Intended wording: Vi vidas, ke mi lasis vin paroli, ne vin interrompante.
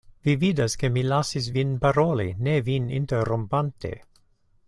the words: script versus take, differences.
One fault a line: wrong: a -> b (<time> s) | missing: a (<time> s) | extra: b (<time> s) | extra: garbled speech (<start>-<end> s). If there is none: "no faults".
no faults